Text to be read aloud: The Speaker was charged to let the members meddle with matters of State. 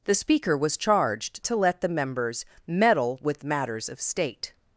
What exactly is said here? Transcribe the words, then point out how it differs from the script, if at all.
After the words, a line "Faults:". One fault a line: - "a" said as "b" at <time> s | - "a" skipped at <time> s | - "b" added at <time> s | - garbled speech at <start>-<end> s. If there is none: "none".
The Speaker was charged to let the members meddle with matters of State.
Faults:
none